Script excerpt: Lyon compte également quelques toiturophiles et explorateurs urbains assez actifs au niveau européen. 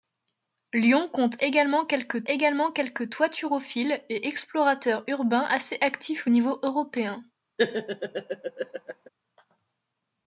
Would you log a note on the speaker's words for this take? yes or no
yes